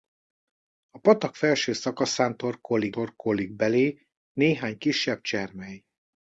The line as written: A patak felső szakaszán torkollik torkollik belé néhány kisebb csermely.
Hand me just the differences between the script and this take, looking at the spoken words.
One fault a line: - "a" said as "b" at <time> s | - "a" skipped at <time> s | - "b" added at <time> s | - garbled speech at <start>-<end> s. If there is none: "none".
none